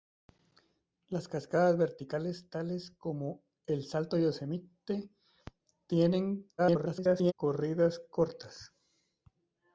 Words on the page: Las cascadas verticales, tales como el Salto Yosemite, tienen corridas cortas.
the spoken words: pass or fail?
fail